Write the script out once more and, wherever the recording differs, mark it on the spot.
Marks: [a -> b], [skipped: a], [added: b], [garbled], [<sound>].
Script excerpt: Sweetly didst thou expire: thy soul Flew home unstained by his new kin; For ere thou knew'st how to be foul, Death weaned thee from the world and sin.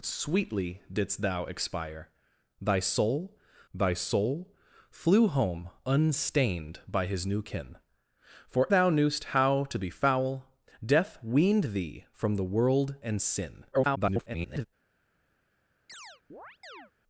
Sweetly didst thou expire: thy soul [added: thy soul] Flew home unstained by his new kin; For [skipped: ere] thou knew'st how to be foul, Death weaned thee from the world and sin. [garbled] [chirp]